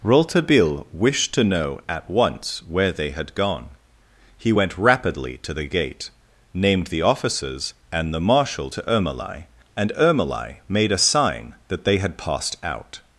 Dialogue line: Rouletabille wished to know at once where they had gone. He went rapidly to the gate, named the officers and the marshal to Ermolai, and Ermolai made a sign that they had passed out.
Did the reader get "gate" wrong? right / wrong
right